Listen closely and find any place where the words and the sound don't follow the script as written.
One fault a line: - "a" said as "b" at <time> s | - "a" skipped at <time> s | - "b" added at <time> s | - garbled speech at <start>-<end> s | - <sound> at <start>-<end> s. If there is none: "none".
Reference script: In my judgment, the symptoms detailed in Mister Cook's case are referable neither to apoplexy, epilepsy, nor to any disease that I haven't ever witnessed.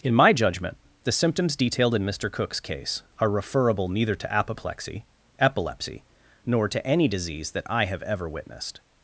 - "haven't" said as "have" at 7.8 s